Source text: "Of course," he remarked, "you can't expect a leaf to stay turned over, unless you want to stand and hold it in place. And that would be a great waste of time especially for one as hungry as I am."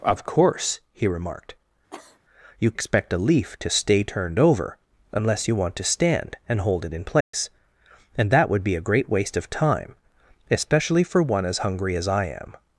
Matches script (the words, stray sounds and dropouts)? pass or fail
fail